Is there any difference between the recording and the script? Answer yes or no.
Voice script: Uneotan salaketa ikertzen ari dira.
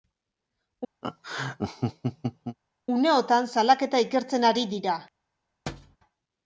no